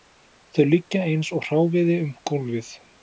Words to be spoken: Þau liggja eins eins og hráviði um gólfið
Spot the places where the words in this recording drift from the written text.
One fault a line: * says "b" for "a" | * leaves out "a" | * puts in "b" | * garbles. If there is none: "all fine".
* leaves out "eins"